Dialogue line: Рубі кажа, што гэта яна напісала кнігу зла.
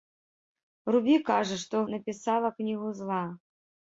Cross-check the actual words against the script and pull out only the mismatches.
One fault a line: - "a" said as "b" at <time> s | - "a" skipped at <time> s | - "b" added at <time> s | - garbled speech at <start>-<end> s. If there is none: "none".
- "гэта яна" skipped at 1.8 s